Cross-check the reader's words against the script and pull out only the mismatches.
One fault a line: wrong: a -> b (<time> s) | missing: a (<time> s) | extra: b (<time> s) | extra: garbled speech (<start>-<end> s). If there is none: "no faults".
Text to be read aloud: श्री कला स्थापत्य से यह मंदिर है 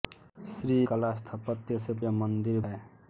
no faults